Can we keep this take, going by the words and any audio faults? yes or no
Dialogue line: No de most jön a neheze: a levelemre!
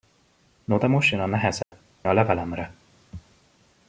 no